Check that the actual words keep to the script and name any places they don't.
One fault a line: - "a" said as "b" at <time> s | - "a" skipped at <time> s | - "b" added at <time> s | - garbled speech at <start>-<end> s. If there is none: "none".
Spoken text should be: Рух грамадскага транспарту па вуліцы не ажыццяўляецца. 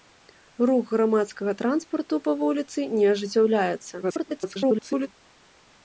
- garbled speech at 4.0-5.1 s